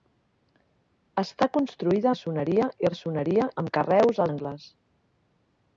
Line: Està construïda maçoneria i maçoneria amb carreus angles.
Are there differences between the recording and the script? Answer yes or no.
no